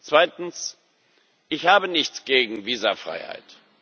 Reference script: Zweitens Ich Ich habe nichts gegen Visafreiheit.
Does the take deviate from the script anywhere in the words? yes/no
yes